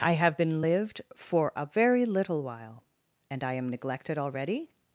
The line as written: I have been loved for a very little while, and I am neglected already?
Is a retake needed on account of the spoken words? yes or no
yes